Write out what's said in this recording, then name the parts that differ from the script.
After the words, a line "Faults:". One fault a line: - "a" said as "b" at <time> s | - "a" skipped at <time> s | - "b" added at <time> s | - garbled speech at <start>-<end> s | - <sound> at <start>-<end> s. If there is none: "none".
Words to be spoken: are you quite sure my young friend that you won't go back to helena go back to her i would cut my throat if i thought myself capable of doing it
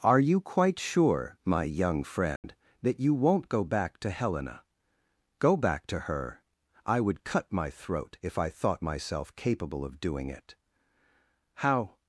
are you quite sure my young friend that you won't go back to helena go back to her i would cut my throat if i thought myself capable of doing it how
Faults:
- dropout at 2.4-2.4 s
- "how" added at 11.6 s